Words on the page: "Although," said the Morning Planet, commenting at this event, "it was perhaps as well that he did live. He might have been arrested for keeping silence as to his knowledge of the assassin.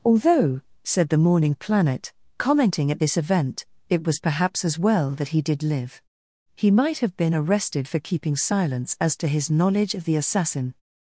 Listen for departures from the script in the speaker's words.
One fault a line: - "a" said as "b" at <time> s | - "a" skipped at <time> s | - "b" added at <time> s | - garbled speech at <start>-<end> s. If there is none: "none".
none